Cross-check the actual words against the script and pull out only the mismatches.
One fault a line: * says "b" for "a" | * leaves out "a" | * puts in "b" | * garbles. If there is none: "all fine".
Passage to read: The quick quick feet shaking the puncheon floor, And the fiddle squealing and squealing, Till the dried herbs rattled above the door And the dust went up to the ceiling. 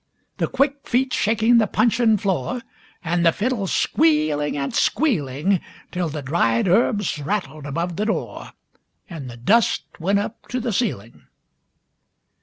* leaves out "quick"